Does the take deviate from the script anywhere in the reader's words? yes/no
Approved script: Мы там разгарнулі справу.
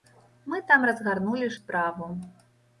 no